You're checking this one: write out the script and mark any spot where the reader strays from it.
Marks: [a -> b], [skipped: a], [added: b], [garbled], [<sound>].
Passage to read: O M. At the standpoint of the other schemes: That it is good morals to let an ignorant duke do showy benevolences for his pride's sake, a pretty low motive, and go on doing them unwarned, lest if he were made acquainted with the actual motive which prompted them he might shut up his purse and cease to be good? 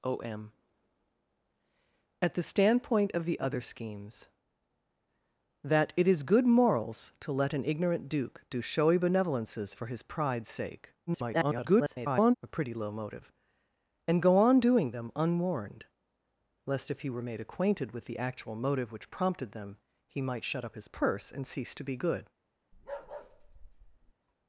O M. At the standpoint of the other schemes: That it is good morals to let an ignorant duke do showy benevolences for his pride's sake, [garbled] a pretty low motive, and go on doing them unwarned, lest if he were made acquainted with the actual motive which prompted them he might shut up his purse and cease to be good? [bark]